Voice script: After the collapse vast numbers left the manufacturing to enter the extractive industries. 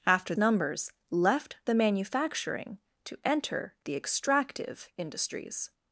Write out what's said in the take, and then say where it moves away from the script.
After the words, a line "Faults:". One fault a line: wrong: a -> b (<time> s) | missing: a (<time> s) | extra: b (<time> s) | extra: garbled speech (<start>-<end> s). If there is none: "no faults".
After numbers left the manufacturing to enter the extractive industries.
Faults:
missing: the collapse vast (0.3 s)